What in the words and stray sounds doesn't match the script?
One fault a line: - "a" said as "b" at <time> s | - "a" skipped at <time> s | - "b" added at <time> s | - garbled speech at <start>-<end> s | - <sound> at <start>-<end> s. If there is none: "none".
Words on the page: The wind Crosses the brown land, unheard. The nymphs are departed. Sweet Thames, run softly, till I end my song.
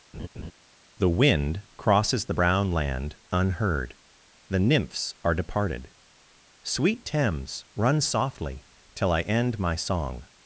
- laugh at 0.1-0.5 s